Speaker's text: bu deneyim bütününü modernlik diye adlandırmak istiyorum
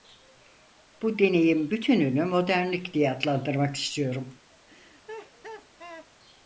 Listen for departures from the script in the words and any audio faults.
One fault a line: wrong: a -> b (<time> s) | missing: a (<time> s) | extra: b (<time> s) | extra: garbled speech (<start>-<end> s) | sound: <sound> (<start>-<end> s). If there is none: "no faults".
sound: laugh (4.7-6.1 s)